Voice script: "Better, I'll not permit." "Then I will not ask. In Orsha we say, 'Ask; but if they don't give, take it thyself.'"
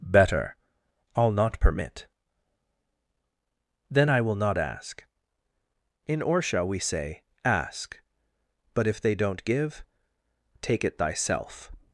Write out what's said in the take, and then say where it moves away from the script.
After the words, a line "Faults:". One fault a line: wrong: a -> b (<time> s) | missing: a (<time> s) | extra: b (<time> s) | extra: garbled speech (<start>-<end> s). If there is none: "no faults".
"Better, I'll not permit." "Then I will not ask. In Orsha we say, 'Ask; but if they don't give, take it thyself.'"
Faults:
no faults